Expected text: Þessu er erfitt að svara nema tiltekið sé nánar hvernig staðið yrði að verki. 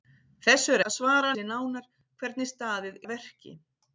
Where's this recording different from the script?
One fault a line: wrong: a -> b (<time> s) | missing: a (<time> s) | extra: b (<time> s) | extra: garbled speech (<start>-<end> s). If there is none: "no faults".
missing: erfitt (0.8 s)
missing: nema tiltekið (1.3 s)
missing: yrði (3.0 s)